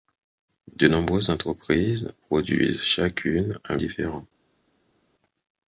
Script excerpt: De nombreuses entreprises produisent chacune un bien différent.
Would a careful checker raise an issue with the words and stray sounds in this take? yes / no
yes